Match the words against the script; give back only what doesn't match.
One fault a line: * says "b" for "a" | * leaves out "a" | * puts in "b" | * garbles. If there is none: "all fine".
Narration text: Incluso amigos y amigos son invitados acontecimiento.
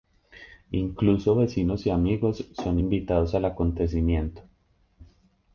* says "vecinos" for "amigos"
* puts in "al"